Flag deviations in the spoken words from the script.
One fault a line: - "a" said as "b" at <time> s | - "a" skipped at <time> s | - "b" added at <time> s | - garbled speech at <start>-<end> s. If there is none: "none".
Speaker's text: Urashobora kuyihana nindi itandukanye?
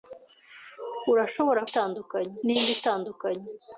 - "kuyihana" said as "itandukanye" at 1.7 s